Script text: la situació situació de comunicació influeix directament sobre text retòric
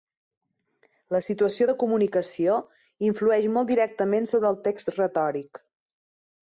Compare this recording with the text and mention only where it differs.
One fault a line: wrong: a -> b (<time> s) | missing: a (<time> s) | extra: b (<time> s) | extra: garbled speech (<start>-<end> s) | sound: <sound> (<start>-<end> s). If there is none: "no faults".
missing: situació (1.7 s)
extra: molt (3.6 s)
extra: el (4.5 s)